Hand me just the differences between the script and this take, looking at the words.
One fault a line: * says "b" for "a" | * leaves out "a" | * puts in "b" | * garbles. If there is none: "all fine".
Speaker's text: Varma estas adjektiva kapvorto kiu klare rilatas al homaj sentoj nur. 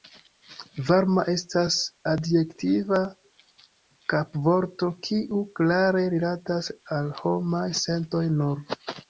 all fine